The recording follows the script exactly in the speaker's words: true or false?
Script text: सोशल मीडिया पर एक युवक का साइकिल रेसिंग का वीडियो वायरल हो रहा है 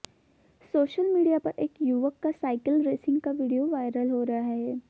true